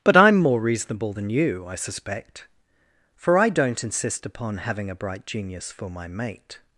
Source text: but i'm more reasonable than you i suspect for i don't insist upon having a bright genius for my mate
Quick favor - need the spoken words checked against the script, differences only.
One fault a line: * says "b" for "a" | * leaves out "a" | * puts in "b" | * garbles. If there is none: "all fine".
all fine